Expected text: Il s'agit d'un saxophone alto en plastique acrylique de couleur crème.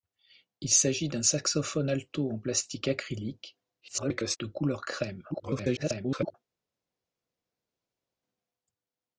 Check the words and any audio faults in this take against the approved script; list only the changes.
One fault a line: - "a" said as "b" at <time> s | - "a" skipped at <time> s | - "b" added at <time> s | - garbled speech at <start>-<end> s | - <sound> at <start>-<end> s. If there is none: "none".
- garbled speech at 3.8-4.4 s
- garbled speech at 5.3-6.4 s